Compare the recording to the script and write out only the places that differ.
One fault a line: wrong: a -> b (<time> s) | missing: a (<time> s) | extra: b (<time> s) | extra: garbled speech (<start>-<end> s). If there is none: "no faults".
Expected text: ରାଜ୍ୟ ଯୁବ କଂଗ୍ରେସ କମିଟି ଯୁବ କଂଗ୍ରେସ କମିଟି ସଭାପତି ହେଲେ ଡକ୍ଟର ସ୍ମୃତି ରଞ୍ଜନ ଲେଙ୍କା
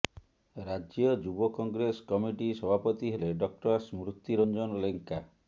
missing: ଯୁବ କଂଗ୍ରେସ କମିଟି (2.5 s)